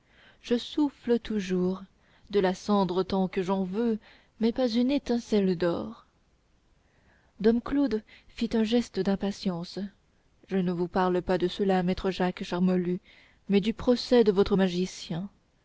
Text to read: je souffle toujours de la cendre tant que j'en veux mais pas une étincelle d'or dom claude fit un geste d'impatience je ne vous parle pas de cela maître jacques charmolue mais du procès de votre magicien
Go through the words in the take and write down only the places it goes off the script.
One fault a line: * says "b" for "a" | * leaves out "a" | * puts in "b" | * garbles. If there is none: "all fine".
all fine